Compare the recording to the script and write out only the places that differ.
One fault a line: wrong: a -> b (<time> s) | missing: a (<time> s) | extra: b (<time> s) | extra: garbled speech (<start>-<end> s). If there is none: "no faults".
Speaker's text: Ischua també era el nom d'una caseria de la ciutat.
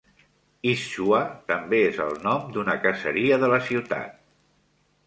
wrong: era -> és (1.9 s)